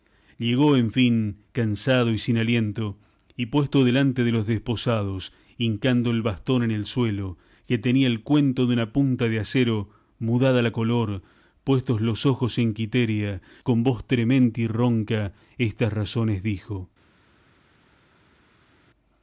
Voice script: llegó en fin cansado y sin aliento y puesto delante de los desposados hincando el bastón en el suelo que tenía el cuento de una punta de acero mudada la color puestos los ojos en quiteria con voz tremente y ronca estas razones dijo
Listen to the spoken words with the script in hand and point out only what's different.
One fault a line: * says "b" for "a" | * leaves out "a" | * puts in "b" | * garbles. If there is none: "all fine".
all fine